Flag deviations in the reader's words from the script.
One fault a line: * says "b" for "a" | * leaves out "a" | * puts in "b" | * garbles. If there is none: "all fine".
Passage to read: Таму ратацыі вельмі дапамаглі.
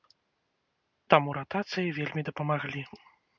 all fine